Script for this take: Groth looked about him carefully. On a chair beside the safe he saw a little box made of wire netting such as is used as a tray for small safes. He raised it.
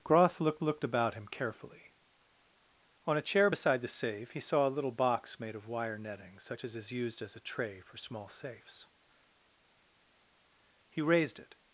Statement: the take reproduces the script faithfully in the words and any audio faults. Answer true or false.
false